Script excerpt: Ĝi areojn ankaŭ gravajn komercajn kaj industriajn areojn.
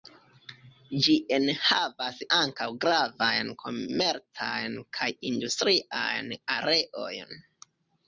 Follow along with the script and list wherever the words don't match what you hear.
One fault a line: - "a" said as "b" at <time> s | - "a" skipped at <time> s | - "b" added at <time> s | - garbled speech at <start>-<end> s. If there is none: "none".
- "areojn" said as "enhavas" at 1.4 s